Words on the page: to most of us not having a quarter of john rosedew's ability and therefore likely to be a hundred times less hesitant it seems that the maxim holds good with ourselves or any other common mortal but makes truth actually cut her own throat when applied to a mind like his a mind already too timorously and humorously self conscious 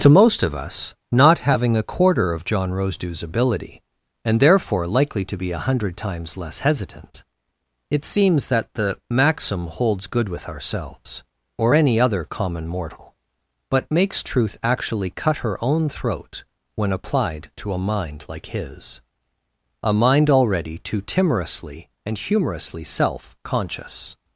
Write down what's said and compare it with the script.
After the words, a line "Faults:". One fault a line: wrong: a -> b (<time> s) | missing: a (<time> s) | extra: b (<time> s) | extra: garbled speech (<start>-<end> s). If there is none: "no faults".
to most of us not having a quarter of john rosedew's ability and therefore likely to be a hundred times less hesitant it seems that the maxim holds good with ourselves or any other common mortal but makes truth actually cut her own throat when applied to a mind like his a mind already too timorously and humorously self conscious
Faults:
no faults